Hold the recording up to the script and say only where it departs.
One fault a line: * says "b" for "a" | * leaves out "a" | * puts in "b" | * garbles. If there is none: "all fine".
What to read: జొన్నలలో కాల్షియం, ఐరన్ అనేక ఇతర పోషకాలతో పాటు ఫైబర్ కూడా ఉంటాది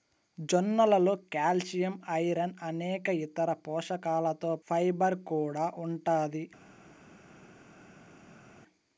* leaves out "పాటు"